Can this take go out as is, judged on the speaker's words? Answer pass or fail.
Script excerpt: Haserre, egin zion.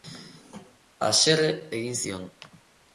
pass